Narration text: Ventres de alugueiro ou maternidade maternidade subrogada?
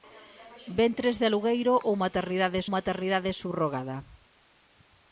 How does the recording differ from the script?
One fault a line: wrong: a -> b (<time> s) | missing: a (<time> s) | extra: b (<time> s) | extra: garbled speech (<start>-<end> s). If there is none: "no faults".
no faults